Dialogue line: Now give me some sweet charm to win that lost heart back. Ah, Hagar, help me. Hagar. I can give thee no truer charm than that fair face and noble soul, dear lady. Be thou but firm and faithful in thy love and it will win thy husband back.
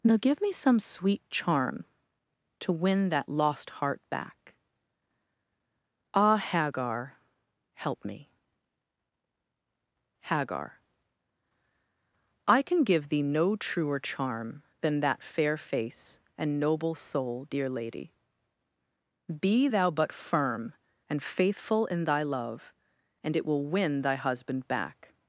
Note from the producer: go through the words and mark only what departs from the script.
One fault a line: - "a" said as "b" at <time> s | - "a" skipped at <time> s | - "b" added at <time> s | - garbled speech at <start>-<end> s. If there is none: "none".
none